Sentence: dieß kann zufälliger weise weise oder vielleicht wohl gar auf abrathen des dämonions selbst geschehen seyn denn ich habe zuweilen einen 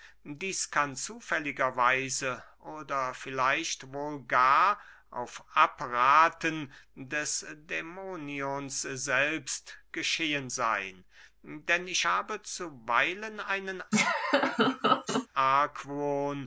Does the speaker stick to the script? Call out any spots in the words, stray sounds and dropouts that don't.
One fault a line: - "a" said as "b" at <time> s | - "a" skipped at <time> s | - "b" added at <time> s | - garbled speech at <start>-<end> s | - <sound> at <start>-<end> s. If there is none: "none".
- "weise" skipped at 2.4 s
- laugh at 13.9-15.3 s